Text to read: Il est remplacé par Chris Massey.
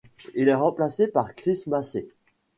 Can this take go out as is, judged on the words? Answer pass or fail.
pass